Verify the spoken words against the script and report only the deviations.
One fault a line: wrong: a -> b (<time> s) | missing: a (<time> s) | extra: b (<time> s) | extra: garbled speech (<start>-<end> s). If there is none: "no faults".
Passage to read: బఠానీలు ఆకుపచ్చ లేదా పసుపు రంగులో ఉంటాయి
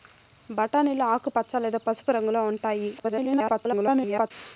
extra: garbled speech (3.0-4.3 s)